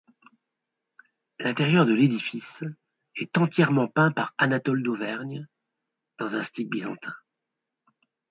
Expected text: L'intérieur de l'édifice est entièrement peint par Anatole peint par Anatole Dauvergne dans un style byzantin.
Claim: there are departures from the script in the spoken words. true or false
true